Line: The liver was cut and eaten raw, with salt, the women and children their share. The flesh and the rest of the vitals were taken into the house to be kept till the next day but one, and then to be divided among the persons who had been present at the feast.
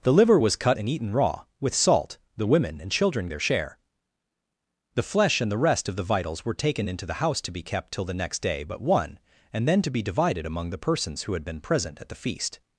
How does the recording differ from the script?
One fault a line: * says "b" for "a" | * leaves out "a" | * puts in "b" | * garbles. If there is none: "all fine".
all fine